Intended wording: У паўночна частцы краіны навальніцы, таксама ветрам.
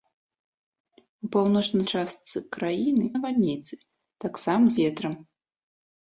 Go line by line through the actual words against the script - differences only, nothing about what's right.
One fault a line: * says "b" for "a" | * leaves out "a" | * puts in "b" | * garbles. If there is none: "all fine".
all fine